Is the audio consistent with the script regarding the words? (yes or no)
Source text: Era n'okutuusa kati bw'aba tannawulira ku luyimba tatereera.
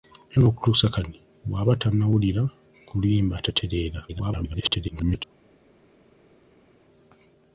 no